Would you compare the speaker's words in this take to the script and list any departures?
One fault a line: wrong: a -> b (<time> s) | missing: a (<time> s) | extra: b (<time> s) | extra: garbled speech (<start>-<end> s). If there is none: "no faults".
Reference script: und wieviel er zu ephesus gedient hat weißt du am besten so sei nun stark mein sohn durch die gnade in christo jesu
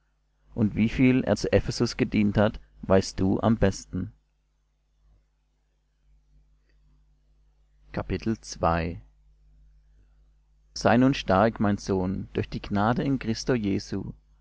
missing: so (4.1 s)